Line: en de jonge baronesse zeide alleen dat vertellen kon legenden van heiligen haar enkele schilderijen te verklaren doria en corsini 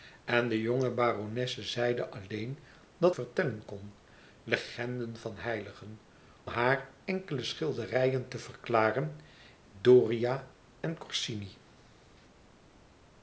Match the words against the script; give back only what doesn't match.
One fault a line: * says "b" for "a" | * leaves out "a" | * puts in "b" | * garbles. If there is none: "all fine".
all fine